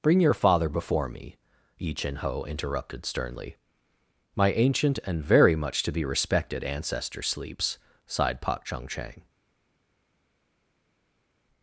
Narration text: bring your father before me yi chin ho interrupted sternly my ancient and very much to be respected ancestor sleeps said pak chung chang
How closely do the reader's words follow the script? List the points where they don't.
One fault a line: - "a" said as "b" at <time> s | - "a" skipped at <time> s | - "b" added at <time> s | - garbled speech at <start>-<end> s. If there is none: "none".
- "said" said as "sighed" at 8.1 s